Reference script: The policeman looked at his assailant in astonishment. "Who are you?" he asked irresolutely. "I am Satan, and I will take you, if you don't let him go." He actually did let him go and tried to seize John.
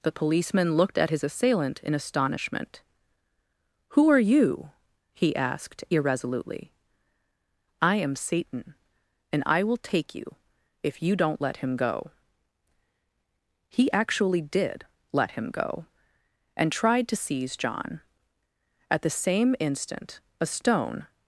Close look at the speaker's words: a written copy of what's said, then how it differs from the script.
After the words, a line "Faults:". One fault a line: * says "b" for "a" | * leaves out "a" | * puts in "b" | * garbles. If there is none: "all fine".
The policeman looked at his assailant in astonishment. "Who are you?" he asked irresolutely. "I am Satan, and I will take you, if you don't let him go." He actually did let him go and tried to seize John. At the same instant a stone
Faults:
* puts in "At the same instant a stone"